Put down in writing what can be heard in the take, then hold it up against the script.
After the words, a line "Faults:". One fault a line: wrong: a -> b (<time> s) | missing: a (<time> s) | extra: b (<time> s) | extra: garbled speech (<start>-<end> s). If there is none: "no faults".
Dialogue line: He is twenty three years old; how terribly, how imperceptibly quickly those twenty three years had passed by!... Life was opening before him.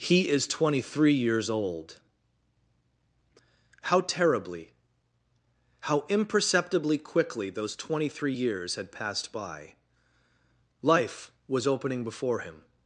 He is twenty three years old; how terribly, how imperceptibly quickly those twenty three years had passed by!... Life was opening before him.
Faults:
no faults